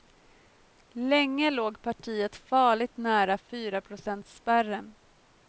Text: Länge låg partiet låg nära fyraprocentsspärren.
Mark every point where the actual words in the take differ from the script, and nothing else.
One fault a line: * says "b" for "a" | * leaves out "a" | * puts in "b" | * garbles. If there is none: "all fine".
* says "farligt" for "låg"